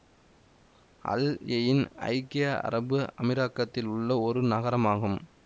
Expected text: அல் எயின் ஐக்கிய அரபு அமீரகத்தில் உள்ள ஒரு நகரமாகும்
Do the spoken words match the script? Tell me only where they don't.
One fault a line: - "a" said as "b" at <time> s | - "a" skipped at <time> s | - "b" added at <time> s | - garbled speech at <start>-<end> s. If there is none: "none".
none